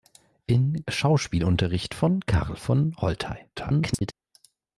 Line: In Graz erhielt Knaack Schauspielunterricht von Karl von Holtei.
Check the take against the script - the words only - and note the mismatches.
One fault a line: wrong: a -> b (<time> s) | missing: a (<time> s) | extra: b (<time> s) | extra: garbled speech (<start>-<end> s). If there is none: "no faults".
missing: Graz erhielt Knaack (0.8 s)
extra: garbled speech (3.6-4.1 s)